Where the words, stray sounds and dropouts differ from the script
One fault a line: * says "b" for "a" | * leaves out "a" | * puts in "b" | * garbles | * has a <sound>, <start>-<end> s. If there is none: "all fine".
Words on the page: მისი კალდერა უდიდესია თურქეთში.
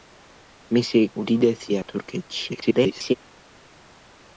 * leaves out "კალდერა"
* garbles